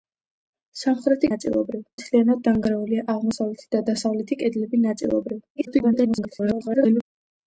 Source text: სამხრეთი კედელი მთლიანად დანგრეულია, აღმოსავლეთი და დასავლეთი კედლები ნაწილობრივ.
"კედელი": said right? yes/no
no